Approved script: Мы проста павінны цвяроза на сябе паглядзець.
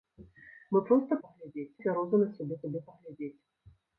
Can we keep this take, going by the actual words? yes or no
no